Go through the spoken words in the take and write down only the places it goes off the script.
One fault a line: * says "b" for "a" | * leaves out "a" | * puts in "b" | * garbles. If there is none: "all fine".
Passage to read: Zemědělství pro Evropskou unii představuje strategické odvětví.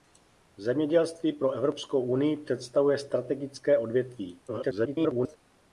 * garbles